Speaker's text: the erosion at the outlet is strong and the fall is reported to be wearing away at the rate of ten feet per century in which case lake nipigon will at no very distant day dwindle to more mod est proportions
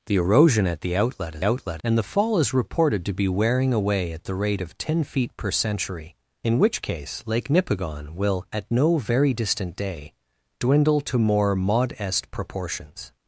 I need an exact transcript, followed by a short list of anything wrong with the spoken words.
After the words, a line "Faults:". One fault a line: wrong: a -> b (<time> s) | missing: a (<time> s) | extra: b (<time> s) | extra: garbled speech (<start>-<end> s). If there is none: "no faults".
the erosion at the outlet is outlet and the fall is reported to be wearing away at the rate of ten feet per century in which case lake nipigon will at no very distant day dwindle to more mod est proportions
Faults:
wrong: strong -> outlet (1.4 s)